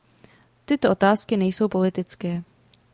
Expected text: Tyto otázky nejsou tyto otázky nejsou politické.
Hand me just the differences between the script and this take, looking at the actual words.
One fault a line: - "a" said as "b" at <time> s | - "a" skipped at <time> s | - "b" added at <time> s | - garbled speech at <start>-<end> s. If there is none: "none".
- "tyto otázky nejsou" skipped at 1.7 s